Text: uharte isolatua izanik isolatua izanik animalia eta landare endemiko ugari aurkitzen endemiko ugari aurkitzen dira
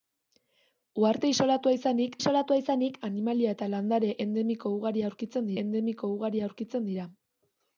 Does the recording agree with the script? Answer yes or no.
yes